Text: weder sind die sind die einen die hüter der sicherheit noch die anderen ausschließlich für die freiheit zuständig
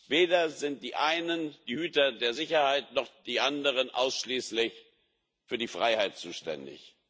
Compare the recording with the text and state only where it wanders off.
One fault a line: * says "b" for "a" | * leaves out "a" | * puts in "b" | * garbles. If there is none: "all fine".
* leaves out "sind die"